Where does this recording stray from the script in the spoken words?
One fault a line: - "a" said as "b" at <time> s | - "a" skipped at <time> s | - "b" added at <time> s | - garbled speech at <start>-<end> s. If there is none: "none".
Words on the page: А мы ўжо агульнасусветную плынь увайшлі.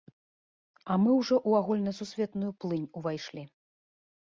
- "ў" added at 1.5 s